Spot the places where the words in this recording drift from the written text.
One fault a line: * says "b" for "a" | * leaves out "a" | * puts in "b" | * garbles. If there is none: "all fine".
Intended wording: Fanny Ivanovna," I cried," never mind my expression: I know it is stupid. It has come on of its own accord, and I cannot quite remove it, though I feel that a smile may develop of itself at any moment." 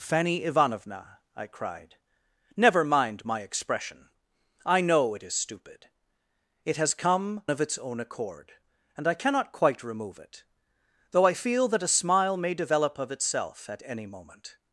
* leaves out "on"